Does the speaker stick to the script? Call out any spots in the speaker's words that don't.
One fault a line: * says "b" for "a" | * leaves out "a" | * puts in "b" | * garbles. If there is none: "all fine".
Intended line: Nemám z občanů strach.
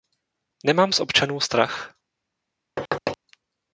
all fine